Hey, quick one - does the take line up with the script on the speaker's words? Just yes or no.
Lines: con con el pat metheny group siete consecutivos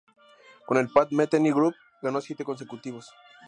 no